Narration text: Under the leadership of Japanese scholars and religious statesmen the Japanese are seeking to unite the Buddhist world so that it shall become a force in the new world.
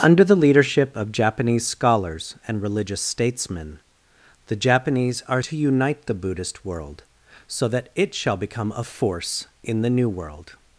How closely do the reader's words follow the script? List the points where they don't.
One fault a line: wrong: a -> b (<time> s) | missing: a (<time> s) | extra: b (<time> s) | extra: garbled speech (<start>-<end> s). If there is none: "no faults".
missing: seeking (5.4 s)